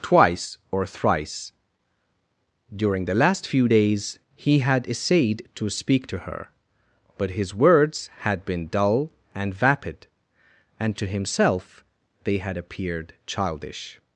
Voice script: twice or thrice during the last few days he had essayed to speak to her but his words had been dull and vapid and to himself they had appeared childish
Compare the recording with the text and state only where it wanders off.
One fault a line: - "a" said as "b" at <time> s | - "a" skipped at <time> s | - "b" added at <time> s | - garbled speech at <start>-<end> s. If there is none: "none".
none